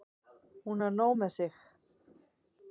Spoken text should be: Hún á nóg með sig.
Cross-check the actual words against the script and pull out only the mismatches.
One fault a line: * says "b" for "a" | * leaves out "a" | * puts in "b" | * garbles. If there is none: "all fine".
all fine